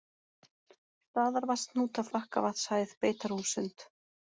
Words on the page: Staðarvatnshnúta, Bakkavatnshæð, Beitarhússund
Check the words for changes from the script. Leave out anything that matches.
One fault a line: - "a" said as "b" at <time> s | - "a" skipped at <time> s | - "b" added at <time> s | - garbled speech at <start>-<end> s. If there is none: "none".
none